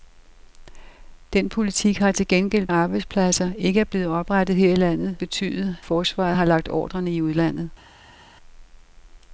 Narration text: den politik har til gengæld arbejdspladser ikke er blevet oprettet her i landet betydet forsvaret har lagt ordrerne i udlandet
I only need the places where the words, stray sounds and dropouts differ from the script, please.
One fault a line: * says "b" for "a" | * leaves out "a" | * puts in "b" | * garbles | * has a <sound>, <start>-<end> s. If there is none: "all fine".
all fine